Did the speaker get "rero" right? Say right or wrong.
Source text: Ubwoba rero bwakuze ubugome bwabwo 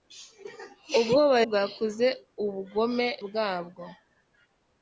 wrong